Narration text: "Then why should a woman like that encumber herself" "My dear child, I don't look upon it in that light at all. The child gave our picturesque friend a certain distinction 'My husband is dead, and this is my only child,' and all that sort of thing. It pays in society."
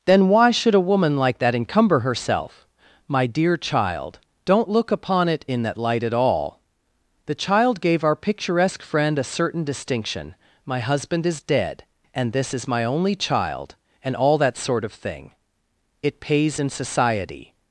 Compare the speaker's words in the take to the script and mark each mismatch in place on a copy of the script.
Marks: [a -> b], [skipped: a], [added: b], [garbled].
"Then why should a woman like that encumber herself" "My dear child, [skipped: I] don't look upon it in that light at all. The child gave our picturesque friend a certain distinction 'My husband is dead, and this is my only child,' and all that sort of thing. It pays in society."